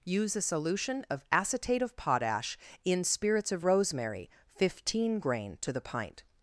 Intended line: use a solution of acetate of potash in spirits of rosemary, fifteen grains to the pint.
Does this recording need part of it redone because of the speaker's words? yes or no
yes